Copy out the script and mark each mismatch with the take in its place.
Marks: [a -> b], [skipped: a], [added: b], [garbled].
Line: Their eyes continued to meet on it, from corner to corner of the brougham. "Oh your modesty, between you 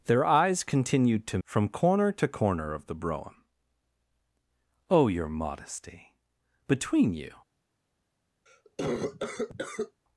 Their eyes continued to [skipped: meet on it,] from corner to corner of the brougham. "Oh your modesty, between you